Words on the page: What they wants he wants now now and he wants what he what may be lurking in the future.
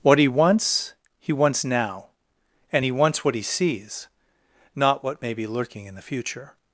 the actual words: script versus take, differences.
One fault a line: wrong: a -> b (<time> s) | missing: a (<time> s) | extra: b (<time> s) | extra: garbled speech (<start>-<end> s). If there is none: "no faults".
wrong: they -> he (0.2 s)
missing: now (2.0 s)
extra: sees not (3.4 s)